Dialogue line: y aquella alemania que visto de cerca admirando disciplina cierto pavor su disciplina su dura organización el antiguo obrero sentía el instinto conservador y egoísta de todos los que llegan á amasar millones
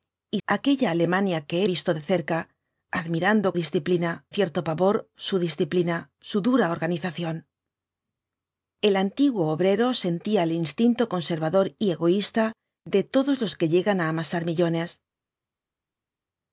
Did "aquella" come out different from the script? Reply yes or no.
no